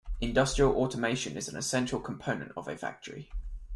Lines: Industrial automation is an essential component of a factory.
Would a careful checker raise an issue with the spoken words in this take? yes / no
no